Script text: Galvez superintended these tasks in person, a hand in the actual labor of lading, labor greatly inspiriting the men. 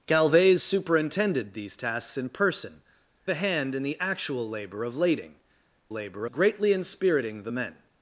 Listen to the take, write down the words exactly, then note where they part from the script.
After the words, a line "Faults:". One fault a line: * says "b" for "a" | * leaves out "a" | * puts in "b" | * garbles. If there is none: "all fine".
Galvez superintended these tasks in person, a hand in the actual labor of lading, labor greatly inspiriting the men.
Faults:
all fine